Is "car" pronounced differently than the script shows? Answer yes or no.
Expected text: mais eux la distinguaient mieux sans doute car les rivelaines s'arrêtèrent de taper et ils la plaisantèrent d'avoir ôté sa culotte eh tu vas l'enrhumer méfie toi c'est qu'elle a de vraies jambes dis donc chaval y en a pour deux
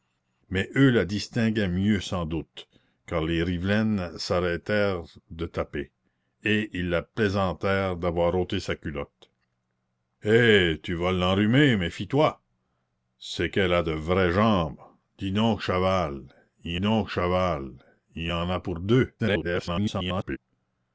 no